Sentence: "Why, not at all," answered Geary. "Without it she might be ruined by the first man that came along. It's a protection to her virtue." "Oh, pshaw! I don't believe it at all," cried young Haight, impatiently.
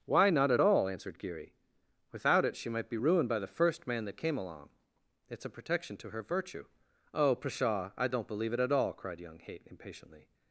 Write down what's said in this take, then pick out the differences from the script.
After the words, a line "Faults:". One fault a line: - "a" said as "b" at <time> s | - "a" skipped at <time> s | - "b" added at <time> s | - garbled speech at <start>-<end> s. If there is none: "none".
"Why, not at all," answered Geary. "Without it she might be ruined by the first man that came along. It's a protection to her virtue." "Oh, pshaw! I don't believe it at all," cried young Haight, impatiently.
Faults:
none